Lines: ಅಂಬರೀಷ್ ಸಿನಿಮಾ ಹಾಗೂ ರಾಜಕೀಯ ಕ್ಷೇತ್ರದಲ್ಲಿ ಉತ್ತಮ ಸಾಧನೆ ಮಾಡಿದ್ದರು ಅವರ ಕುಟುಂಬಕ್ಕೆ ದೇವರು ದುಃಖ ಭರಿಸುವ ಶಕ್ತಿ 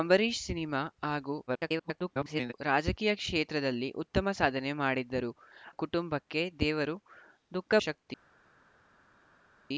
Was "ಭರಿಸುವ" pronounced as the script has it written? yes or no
no